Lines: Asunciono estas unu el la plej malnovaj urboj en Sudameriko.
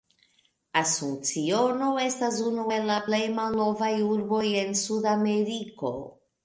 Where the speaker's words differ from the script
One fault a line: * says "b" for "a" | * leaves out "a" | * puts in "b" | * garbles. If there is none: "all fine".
all fine